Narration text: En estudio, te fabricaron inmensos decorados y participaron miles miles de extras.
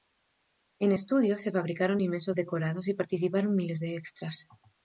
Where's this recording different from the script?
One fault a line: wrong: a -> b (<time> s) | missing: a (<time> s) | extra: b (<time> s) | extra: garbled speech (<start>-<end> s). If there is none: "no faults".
wrong: te -> se (1.4 s)
missing: miles (3.8 s)